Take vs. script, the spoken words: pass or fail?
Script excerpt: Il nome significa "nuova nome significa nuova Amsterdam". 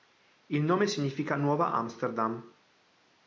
fail